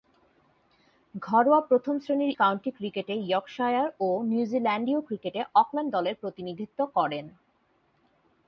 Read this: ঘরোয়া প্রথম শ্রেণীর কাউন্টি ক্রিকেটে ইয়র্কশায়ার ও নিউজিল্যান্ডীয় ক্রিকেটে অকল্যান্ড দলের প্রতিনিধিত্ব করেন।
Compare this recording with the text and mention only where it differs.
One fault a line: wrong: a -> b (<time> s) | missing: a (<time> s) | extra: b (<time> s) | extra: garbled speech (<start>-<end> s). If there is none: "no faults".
no faults